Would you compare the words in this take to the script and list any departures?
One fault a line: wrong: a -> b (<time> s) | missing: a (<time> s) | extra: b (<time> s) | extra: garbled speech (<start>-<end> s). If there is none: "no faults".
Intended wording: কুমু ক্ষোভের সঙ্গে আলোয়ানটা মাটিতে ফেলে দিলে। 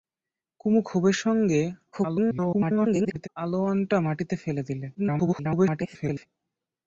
extra: garbled speech (1.9-3.3 s)
extra: garbled speech (4.9-6.3 s)